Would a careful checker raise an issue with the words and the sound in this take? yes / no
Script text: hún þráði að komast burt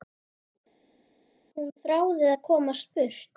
no